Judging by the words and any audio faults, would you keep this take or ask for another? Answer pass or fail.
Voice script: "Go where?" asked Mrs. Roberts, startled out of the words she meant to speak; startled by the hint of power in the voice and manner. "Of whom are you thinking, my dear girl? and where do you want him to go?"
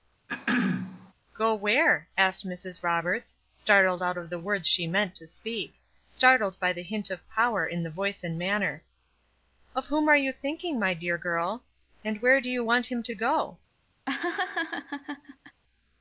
fail